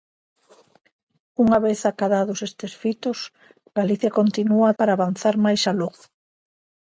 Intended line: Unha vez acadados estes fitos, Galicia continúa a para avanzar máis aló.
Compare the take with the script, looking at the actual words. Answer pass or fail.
pass